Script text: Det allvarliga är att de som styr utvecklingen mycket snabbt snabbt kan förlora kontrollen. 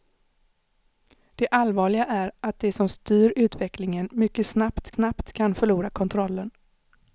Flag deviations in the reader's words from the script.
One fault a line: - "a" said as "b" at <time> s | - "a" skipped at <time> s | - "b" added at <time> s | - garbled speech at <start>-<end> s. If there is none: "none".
none